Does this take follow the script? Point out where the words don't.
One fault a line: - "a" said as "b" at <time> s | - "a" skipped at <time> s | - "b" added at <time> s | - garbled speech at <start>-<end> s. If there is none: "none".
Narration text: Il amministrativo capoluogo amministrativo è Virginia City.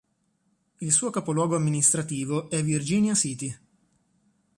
- "amministrativo" said as "suo" at 0.9 s